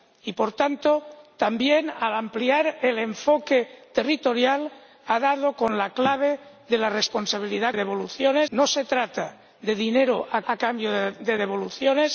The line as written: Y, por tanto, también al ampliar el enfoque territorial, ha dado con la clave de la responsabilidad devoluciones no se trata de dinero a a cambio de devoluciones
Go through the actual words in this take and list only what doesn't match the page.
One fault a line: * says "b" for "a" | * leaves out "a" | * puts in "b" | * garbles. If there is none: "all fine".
all fine